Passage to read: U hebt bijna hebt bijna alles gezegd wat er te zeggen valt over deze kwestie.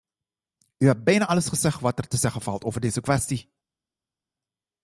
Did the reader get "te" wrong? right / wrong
right